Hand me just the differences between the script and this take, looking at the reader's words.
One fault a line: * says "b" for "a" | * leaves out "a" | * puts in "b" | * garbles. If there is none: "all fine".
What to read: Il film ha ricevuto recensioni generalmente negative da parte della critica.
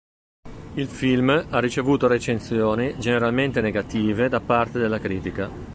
all fine